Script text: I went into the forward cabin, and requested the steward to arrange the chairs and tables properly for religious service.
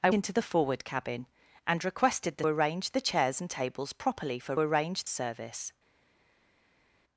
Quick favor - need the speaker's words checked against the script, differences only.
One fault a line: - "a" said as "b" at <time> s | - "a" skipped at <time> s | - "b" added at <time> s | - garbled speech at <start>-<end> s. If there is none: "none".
- "went" skipped at 0.1 s
- "steward to" skipped at 2.4 s
- "religious" said as "arrange" at 4.6 s